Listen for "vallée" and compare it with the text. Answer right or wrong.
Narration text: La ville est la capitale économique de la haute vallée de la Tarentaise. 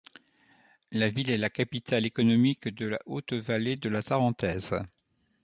right